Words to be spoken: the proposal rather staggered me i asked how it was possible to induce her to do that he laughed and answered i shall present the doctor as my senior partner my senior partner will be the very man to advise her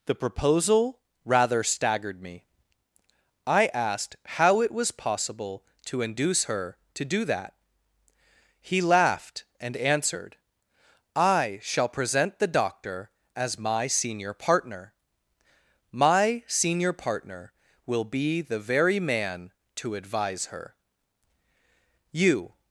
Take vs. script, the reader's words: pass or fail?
fail